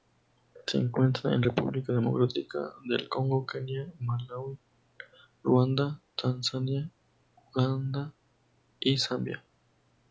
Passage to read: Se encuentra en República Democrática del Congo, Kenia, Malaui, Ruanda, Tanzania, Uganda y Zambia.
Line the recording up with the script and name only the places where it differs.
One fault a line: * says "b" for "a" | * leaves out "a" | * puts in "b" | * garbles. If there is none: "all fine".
all fine